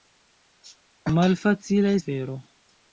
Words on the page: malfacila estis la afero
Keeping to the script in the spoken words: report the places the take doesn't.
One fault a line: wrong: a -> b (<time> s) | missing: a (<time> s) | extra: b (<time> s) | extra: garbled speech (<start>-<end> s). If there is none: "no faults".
missing: estis la (1.9 s)